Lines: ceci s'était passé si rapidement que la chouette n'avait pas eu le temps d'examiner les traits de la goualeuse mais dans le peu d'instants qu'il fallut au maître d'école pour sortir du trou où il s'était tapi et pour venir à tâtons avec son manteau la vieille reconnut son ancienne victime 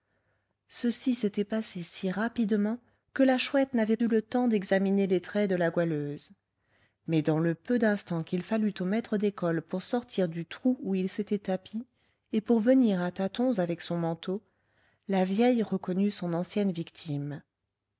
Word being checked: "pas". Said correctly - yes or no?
no